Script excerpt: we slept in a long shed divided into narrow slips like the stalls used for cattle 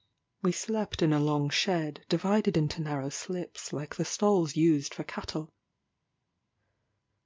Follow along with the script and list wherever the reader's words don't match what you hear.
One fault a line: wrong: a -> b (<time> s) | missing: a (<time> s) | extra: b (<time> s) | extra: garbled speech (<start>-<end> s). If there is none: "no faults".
no faults